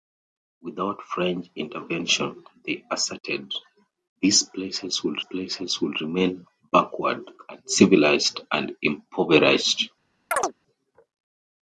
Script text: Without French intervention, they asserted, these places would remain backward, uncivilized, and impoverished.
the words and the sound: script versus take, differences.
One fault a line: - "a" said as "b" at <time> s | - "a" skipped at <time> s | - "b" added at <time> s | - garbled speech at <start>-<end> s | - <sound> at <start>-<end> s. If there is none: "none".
- "places would" added at 5.2 s
- chirp at 10.3-10.5 s